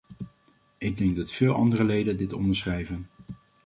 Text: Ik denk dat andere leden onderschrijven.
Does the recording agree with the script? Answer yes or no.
no